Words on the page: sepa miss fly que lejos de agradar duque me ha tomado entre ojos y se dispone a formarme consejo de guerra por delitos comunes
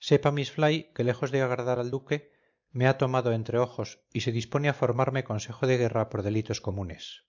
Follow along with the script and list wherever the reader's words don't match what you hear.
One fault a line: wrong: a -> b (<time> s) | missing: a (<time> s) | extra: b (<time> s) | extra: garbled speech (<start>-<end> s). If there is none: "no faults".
extra: al (1.8 s)